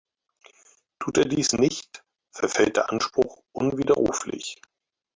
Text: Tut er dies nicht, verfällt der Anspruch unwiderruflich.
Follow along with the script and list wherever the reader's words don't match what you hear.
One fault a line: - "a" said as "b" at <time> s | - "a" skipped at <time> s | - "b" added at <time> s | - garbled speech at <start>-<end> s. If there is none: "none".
none